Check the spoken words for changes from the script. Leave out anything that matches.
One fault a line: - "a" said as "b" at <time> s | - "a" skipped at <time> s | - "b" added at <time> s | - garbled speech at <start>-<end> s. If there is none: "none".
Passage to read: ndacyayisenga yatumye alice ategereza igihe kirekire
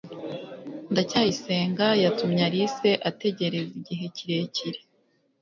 none